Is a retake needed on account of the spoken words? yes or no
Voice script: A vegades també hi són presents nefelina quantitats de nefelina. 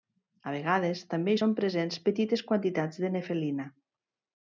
yes